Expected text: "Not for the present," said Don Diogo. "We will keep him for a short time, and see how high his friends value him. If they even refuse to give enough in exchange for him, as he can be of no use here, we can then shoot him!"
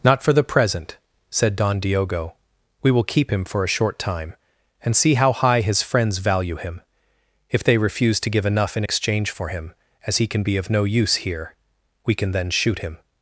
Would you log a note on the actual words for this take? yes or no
yes